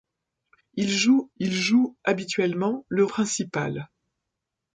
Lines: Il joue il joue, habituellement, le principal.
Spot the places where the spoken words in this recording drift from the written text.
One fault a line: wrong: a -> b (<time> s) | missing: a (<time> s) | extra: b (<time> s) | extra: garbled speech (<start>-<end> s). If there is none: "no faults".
no faults